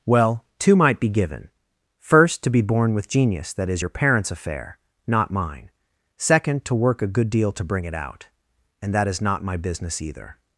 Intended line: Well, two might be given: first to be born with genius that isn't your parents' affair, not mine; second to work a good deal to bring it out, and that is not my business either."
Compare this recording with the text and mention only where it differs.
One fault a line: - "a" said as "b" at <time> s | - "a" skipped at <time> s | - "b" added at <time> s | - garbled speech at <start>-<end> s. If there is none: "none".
- "isn't" said as "is" at 3.7 s